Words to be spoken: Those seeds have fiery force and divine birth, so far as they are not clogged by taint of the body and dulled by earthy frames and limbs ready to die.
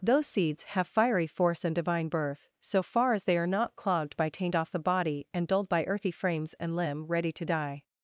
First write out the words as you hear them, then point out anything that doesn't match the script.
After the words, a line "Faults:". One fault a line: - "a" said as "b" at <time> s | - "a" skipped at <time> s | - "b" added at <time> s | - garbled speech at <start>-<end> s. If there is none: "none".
Those seeds have fiery force and divine birth, so far as they are not clogged by taint off the body and dulled by earthy frames and limb ready to die.
Faults:
- "of" said as "off" at 4.5 s
- "limbs" said as "limb" at 6.8 s